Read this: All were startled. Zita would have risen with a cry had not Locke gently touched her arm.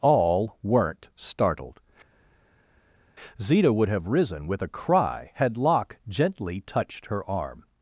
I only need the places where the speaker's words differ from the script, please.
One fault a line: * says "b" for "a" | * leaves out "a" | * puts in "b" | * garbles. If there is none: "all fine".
* says "weren't" for "were"
* leaves out "not"